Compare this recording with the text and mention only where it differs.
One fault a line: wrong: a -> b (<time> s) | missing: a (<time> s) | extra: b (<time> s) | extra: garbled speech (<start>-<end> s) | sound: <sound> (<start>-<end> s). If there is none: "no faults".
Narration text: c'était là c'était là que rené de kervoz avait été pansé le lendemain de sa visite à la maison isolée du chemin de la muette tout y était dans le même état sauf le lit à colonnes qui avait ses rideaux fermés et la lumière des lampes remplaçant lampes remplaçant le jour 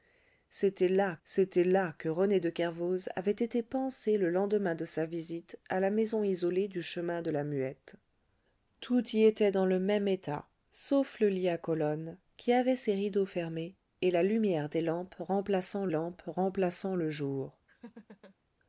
sound: laugh (17.7-18.4 s)